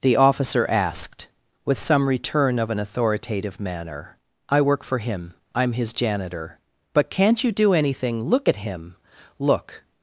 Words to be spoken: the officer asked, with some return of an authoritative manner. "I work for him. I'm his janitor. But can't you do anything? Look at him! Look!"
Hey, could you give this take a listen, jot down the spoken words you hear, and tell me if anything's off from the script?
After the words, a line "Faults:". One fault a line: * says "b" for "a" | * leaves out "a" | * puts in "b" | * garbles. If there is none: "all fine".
the officer asked, with some return of an authoritative manner. "I work for him. I'm his janitor. But can't you do anything? Look at him! Look!"
Faults:
all fine